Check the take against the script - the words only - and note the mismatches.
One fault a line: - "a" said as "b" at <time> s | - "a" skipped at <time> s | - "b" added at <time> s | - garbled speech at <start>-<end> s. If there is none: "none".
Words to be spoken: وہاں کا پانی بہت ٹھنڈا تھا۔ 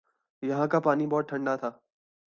- "وہاں" said as "یہاں" at 0.4 s